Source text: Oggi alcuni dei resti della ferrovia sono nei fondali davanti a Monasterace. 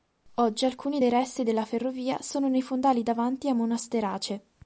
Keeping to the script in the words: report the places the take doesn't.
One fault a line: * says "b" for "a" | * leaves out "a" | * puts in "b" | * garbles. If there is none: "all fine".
all fine